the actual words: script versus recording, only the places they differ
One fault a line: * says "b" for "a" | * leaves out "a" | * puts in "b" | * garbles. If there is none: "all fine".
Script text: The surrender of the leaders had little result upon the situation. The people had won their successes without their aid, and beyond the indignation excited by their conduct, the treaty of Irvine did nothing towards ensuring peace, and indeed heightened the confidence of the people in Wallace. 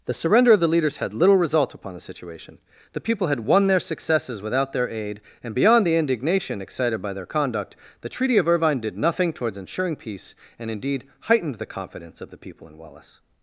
all fine